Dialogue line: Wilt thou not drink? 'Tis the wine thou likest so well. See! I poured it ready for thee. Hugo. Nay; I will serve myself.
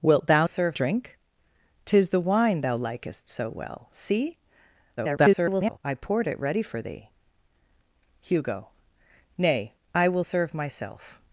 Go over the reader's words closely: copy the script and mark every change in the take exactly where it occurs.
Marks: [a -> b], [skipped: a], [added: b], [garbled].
Wilt thou [not -> serve] drink? 'Tis the wine thou likest so well. See! [garbled] I poured it ready for thee. Hugo. Nay; I will serve myself.